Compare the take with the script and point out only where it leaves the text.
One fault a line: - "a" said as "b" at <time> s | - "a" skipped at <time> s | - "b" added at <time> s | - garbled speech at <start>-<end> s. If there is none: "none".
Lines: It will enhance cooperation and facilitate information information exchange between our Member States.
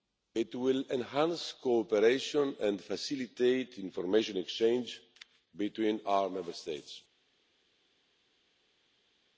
- "information" skipped at 4.4 s